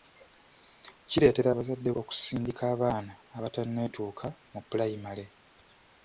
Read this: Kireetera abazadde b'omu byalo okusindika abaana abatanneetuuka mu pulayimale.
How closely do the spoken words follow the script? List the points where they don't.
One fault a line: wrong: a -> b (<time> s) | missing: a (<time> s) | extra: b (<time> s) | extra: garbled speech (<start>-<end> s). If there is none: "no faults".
missing: b'omu byalo (1.9 s)